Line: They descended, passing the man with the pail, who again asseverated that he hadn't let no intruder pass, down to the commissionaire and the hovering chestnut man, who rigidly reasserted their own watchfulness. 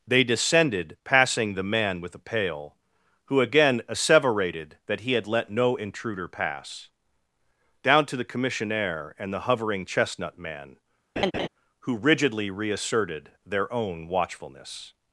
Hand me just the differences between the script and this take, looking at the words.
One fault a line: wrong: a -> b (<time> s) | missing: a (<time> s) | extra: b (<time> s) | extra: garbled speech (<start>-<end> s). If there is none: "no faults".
wrong: hadn't -> had (5.1 s)